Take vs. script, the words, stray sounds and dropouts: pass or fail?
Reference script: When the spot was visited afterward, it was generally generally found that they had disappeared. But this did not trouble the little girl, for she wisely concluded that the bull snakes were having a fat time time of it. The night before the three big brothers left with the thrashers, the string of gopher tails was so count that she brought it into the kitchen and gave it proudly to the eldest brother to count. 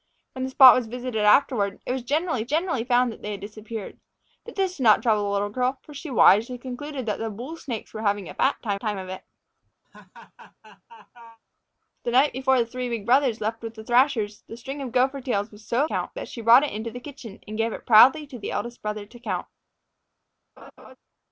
fail